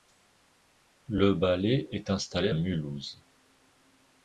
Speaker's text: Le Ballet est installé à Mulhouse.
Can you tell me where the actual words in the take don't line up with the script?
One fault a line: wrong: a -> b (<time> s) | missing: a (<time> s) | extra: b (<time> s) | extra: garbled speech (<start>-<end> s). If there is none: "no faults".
missing: à (2.5 s)